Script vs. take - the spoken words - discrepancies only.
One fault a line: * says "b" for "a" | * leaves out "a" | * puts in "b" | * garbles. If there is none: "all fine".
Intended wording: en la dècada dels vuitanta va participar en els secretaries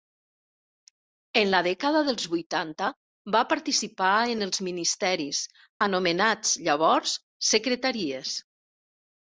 * puts in "ministeris anomenats llavors"